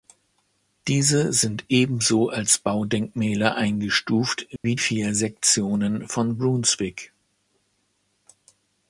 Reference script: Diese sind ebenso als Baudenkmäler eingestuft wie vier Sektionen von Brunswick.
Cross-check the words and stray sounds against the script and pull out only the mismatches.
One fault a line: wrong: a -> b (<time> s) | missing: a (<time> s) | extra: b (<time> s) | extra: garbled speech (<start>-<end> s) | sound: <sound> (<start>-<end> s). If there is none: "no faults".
sound: dropout (4.6-4.6 s)